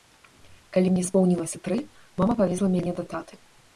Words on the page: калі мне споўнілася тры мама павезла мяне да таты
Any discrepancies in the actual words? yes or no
no